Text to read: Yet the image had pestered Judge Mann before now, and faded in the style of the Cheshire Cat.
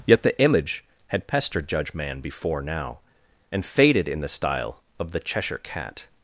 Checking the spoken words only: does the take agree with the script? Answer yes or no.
yes